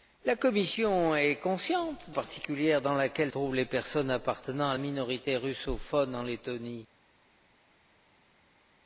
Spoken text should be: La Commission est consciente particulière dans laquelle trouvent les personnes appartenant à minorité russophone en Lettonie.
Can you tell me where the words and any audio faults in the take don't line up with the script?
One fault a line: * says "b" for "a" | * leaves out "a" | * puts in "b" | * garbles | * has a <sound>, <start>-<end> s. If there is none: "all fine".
all fine